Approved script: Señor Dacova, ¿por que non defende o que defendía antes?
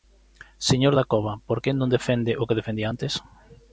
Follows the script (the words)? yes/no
yes